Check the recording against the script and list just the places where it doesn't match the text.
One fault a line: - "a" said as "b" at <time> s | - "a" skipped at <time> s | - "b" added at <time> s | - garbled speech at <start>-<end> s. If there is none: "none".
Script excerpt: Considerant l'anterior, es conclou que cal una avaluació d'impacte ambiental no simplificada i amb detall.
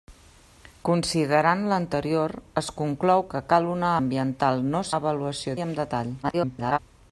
- "avaluació d'impacte" skipped at 3.9 s
- "simplificada" said as "avaluació" at 5.0 s
- garbled speech at 6.2-6.8 s